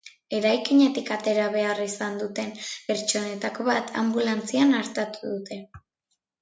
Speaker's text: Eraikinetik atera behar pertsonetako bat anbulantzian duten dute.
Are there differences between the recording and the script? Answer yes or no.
yes